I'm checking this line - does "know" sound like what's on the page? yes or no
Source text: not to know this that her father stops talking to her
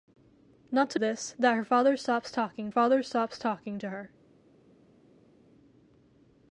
no